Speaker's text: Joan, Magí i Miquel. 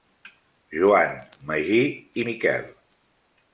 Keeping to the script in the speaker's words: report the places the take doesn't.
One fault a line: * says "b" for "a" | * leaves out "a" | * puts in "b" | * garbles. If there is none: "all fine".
all fine